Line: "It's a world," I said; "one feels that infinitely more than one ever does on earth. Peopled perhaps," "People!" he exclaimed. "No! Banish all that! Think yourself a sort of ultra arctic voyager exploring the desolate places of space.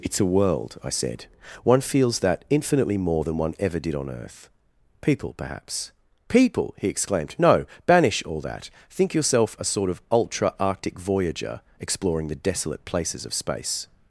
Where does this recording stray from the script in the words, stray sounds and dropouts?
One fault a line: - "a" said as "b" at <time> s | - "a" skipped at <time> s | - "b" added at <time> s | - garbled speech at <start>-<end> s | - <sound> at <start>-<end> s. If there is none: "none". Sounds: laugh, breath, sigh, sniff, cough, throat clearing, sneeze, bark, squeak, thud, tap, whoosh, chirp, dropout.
- "does" said as "did" at 3.8 s
- "Peopled" said as "People" at 5.0 s